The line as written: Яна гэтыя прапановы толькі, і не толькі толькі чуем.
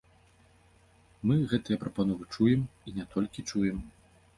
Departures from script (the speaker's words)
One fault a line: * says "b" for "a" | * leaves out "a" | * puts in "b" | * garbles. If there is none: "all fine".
* says "Мы" for "Яна"
* says "чуем" for "толькі"
* leaves out "толькі"